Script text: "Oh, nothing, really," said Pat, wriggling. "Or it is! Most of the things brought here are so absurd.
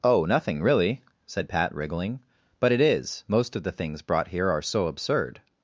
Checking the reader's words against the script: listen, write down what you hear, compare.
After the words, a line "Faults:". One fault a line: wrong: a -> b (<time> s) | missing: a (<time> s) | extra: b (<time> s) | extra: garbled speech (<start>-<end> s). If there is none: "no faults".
"Oh, nothing, really," said Pat, wriggling. "But it is! Most of the things brought here are so absurd.
Faults:
wrong: Or -> But (2.6 s)